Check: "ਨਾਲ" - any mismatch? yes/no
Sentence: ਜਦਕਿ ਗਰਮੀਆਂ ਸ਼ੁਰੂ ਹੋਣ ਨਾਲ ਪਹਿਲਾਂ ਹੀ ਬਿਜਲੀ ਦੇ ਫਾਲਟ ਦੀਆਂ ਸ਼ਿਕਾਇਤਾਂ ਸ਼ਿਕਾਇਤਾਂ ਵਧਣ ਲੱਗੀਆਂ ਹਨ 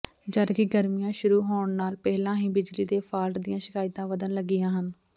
no